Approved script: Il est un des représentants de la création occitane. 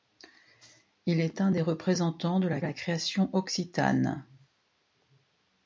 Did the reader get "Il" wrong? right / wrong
right